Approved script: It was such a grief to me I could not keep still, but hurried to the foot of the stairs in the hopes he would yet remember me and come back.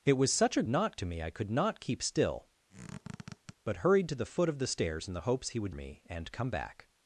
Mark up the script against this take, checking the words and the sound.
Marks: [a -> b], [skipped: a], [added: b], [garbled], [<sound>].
It was such a [grief -> not] to me I could not keep still, [squeak] but hurried to the foot of the stairs in the hopes he would [skipped: yet remember] me and come back.